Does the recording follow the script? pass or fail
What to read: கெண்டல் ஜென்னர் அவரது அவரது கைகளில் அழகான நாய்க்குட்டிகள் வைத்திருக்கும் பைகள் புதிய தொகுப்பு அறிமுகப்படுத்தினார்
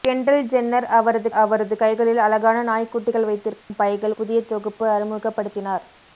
pass